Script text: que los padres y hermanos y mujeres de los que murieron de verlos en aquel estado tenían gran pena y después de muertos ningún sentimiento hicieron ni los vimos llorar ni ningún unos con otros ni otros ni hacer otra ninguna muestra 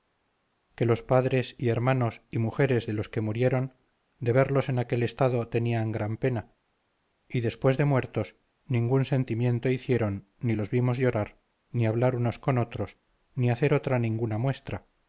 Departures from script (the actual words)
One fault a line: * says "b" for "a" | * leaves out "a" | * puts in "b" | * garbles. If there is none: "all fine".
* says "hablar" for "ningún"
* leaves out "otros ni"